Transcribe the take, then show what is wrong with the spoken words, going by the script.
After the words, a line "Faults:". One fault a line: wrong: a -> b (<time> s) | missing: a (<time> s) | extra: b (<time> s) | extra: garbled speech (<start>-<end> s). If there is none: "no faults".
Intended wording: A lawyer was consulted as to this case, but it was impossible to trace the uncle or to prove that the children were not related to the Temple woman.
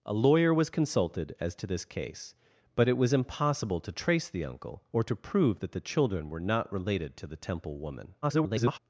A lawyer was consulted as to this case, but it was impossible to trace the uncle or to prove that the children were not related to the Temple woman. [garbled]
Faults:
extra: garbled speech (8.2-8.8 s)